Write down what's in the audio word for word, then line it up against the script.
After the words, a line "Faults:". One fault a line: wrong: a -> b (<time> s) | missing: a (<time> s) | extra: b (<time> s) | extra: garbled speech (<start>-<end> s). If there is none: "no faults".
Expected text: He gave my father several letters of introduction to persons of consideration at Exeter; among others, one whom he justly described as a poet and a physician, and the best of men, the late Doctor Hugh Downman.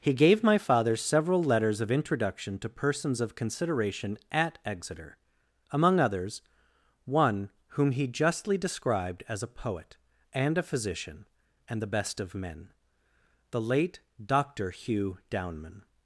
He gave my father several letters of introduction to persons of consideration at Exeter; among others, one whom he justly described as a poet and a physician, and the best of men, the late Doctor Hugh Downman.
Faults:
no faults